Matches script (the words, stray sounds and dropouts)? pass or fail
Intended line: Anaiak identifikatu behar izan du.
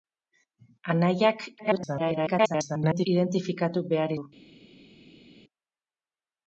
fail